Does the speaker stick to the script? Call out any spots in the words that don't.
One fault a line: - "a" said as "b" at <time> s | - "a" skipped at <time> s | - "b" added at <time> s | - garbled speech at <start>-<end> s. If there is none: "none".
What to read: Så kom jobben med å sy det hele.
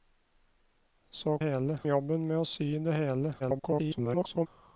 - "kom" said as "hele" at 1.4 s
- garbled speech at 3.4-4.5 s